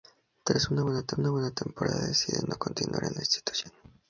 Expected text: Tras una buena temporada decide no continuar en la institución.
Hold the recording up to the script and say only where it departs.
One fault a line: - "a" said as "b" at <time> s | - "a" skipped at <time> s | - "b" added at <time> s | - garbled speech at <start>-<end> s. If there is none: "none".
none